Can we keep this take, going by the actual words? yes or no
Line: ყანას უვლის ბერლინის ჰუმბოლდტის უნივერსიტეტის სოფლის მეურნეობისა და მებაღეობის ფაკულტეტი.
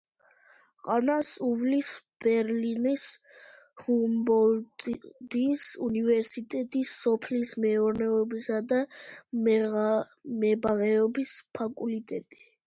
yes